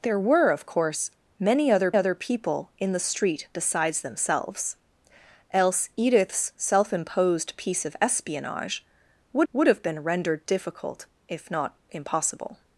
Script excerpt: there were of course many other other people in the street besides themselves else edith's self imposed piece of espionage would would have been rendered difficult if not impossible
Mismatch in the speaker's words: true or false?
false